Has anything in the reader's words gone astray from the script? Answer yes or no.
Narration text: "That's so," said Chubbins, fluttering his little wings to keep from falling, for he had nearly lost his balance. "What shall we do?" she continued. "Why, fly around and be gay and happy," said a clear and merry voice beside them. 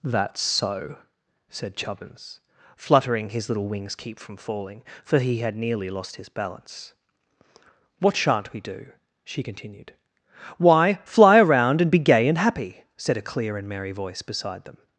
yes